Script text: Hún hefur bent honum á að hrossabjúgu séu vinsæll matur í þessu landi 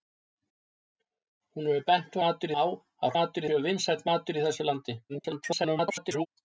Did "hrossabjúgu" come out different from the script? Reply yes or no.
yes